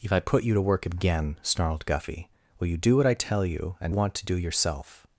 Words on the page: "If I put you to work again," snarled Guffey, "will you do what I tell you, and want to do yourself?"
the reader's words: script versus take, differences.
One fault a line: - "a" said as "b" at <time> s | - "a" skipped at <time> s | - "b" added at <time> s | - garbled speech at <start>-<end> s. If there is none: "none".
none